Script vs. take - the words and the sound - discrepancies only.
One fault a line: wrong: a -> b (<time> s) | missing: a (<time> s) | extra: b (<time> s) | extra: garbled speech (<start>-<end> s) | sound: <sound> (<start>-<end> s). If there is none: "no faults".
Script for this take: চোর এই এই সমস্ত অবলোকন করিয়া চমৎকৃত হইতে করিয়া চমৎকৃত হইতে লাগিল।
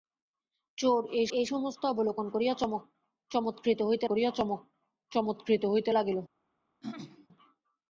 sound: throat clearing (6.8-7.3 s)